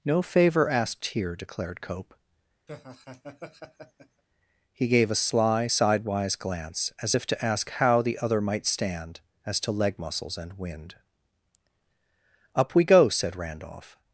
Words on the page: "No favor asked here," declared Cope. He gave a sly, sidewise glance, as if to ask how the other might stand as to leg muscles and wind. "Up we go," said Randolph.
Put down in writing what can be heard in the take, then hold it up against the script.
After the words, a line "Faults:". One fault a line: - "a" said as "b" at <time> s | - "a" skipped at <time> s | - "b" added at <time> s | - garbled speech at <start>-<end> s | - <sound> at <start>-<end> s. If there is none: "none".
"No favor asked here," declared Cope. He gave a sly, sidewise glance, as if to ask how the other might stand as to leg muscles and wind. "Up we go," said Randolph.
Faults:
- laugh at 2.7-4.2 s